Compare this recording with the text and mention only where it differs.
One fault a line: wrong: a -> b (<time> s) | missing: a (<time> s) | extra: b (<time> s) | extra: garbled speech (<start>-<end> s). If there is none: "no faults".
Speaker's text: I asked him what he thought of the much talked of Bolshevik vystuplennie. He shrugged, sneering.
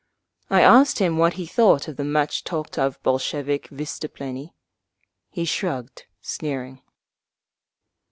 no faults